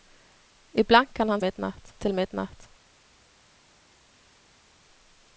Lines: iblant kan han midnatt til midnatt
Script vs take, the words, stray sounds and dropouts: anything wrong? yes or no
no